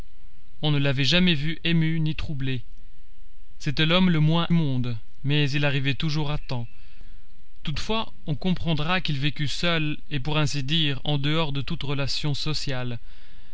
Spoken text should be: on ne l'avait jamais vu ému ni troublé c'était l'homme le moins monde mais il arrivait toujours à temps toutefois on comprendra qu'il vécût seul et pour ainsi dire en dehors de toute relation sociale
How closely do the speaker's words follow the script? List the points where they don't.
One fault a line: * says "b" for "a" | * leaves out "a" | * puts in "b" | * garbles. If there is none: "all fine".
all fine